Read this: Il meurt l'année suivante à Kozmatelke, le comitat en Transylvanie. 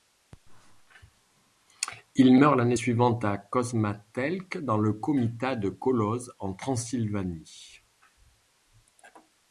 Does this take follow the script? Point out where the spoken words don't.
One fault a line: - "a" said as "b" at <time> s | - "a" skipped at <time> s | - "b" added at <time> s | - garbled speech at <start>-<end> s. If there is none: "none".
- "dans" added at 4.6 s
- "de Kolozs" added at 5.5 s